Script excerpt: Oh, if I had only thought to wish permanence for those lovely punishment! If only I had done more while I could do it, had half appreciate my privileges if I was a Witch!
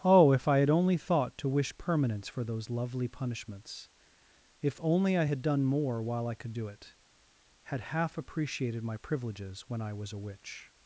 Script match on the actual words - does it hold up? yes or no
no